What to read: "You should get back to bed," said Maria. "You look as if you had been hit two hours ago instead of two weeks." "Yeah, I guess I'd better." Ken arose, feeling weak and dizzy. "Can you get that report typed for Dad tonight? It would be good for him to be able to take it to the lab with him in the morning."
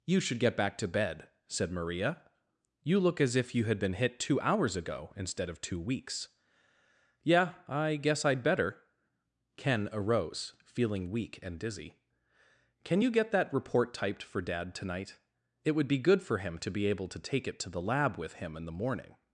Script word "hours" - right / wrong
right